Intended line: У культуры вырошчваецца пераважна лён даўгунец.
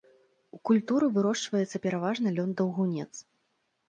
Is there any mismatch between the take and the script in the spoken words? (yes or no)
no